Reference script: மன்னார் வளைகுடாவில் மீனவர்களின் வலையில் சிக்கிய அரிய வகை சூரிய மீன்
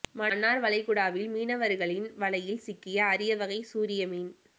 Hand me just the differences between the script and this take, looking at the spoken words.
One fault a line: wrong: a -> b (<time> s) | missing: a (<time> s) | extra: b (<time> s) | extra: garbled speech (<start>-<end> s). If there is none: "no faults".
no faults